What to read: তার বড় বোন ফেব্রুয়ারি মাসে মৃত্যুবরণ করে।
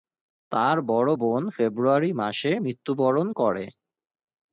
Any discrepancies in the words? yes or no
no